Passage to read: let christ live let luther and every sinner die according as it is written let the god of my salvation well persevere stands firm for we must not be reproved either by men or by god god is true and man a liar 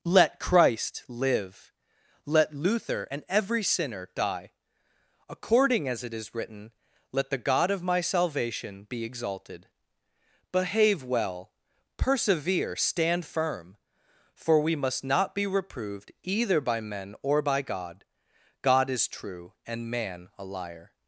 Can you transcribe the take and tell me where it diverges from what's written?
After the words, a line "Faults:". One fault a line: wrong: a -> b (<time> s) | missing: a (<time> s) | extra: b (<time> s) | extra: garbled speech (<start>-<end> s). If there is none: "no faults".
let christ live let luther and every sinner die according as it is written let the god of my salvation be exalted behave well persevere stand firm for we must not be reproved either by men or by god god is true and man a liar
Faults:
extra: be exalted behave (8.8 s)
wrong: stands -> stand (12.8 s)